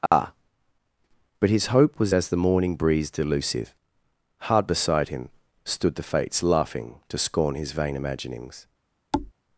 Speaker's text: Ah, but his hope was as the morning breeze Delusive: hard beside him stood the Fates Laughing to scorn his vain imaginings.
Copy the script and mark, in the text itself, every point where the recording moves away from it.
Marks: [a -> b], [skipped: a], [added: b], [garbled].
Ah, but his hope was as the morning breeze Delusive: hard beside him stood the Fates Laughing to scorn his vain imaginings.